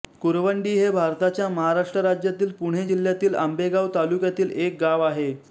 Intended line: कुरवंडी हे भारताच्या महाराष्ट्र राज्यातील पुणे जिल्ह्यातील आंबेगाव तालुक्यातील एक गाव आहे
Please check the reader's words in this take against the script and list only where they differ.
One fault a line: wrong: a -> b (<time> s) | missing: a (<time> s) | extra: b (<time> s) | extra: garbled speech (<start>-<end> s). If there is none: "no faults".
no faults